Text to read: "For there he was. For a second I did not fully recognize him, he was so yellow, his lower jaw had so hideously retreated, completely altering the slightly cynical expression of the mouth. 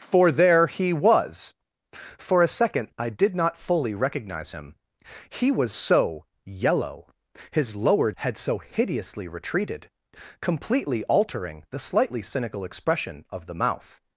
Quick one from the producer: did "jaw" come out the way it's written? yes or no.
no